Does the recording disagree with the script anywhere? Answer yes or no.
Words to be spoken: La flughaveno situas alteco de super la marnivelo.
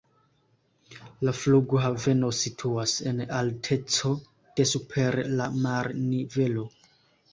yes